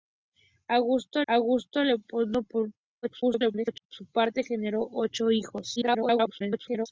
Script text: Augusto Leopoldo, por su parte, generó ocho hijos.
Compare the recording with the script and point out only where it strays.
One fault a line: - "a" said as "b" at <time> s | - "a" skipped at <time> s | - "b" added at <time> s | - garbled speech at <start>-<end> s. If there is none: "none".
- "augusto" added at 1.3 s
- garbled speech at 3.0-3.9 s
- garbled speech at 5.8-6.9 s